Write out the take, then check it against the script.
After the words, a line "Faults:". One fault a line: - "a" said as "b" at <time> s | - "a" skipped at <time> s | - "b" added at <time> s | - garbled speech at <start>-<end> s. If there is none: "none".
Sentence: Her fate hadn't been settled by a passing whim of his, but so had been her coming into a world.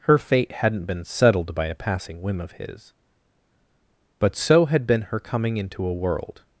Her fate hadn't been settled by a passing whim of his, but so had been her coming into a world.
Faults:
none